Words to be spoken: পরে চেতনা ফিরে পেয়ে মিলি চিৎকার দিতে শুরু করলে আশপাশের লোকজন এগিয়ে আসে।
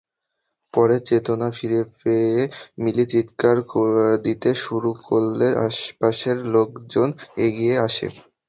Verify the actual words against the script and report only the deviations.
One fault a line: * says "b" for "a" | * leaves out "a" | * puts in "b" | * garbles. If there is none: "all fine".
all fine